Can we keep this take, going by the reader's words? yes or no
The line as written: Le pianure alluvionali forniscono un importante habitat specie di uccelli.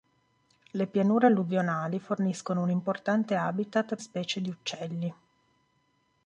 yes